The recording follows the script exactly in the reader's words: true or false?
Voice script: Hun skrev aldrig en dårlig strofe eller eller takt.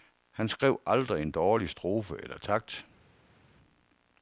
false